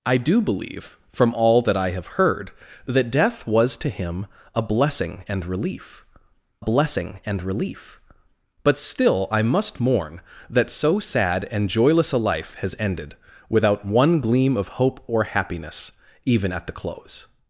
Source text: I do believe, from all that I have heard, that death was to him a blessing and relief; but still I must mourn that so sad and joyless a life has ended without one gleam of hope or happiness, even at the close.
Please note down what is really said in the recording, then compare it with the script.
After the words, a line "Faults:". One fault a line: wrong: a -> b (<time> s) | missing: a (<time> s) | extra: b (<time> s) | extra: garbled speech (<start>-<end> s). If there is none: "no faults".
I do believe, from all that I have heard, that death was to him a blessing and relief blessing and relief; but still I must mourn that so sad and joyless a life has ended without one gleam of hope or happiness, even at the close.
Faults:
extra: blessing and relief (6.6 s)